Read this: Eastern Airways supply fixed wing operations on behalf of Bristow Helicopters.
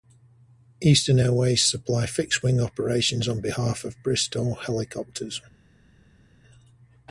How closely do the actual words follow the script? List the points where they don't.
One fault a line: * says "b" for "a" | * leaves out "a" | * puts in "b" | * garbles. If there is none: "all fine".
all fine